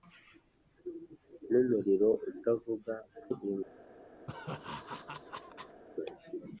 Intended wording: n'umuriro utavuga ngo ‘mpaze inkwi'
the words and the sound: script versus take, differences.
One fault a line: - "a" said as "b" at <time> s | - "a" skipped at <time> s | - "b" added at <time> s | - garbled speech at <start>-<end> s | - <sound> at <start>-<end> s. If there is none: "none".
- "ngo mpaze" skipped at 2.9 s
- laugh at 4.3-5.8 s